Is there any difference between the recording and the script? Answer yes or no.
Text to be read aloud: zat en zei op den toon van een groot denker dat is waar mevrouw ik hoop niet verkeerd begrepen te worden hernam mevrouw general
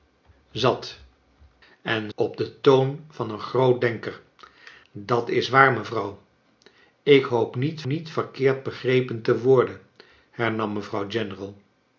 yes